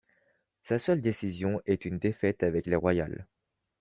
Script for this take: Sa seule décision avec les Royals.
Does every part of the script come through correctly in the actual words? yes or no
no